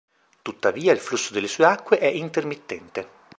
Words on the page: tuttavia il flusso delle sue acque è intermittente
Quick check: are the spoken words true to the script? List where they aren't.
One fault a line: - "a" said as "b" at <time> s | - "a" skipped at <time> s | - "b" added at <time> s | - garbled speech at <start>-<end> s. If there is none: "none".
none